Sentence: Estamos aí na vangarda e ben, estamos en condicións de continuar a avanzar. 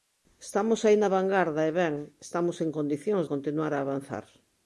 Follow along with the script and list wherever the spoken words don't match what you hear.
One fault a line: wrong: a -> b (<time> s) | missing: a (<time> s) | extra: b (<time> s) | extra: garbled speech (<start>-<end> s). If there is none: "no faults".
missing: de (3.2 s)